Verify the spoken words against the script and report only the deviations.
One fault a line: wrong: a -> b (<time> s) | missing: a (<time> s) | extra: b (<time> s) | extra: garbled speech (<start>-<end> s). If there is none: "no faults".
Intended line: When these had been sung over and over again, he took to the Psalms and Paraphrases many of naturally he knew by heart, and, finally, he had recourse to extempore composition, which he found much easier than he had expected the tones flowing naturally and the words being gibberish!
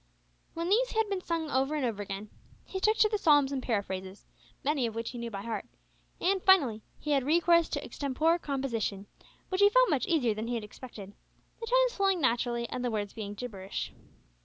wrong: naturally -> which (5.0 s)